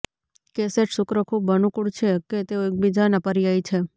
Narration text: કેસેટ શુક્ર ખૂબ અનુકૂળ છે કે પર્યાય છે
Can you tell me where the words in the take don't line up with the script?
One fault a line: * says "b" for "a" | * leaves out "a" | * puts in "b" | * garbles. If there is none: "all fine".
* puts in "તેઓ એકબીજાના"